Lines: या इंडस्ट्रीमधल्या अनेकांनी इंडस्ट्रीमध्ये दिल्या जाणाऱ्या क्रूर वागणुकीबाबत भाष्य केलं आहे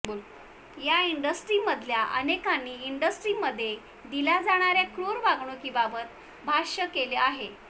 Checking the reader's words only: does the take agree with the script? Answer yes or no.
yes